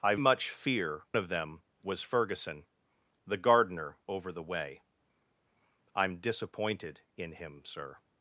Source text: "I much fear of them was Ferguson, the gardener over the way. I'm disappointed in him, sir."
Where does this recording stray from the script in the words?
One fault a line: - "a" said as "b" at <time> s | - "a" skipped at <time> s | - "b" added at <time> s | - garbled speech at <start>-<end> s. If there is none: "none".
none